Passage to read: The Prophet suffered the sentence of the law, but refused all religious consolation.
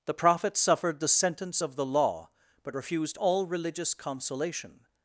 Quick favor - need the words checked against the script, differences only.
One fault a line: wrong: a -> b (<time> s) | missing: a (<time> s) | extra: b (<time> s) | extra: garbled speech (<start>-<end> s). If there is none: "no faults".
no faults